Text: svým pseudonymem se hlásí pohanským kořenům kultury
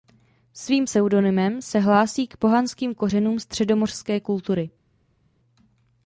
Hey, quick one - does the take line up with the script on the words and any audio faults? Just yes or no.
no